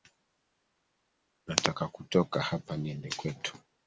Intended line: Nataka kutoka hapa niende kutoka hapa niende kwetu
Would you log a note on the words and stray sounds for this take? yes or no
yes